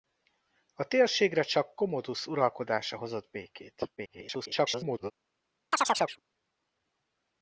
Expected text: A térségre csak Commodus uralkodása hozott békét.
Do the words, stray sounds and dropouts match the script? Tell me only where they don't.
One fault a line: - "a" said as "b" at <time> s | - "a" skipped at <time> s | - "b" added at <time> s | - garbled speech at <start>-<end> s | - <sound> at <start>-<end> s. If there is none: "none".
- garbled speech at 4.0-5.1 s
- chirp at 5.7-6.2 s